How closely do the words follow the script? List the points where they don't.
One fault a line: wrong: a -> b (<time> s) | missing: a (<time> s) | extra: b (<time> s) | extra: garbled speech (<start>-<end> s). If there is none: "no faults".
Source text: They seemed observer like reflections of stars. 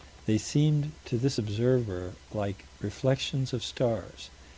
extra: to this (1.1 s)